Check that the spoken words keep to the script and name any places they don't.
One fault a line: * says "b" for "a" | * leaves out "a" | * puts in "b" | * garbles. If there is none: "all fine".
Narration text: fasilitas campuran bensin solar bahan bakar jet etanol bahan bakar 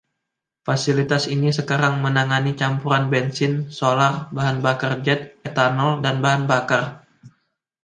* puts in "ini sekarang menangani"
* puts in "dan"